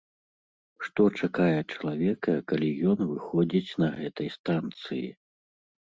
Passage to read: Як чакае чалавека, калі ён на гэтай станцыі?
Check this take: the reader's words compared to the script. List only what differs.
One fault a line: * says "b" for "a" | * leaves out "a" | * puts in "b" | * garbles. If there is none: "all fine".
* says "Што" for "Як"
* puts in "выходзіць"